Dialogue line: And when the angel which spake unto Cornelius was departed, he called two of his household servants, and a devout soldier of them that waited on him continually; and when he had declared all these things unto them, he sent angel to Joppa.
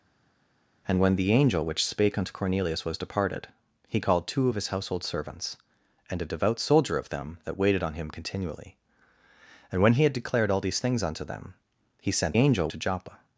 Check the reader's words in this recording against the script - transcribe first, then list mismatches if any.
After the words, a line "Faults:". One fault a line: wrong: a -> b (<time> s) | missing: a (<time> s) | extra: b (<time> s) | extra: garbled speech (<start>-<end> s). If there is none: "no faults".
And when the angel which spake unto Cornelius was departed, he called two of his household servants, and a devout soldier of them that waited on him continually; and when he had declared all these things unto them, he sent angel to Joppa.
Faults:
no faults